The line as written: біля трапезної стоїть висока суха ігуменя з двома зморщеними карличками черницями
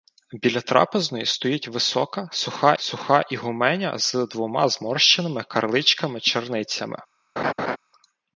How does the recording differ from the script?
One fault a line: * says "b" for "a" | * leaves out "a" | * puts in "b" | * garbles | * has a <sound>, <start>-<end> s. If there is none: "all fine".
* puts in "суха"
* has a laugh, 7.4-7.8 s